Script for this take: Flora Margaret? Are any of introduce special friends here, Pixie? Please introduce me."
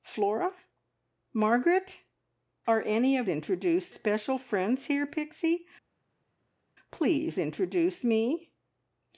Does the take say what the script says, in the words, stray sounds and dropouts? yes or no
yes